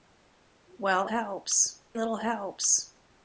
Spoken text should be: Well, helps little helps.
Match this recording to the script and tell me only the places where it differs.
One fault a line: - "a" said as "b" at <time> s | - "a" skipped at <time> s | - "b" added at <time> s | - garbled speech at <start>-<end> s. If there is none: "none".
none